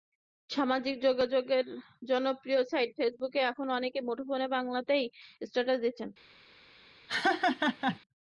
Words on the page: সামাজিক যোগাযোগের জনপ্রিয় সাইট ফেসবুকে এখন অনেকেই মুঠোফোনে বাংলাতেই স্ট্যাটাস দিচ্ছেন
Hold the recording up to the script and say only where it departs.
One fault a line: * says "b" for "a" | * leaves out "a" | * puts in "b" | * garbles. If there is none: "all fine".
all fine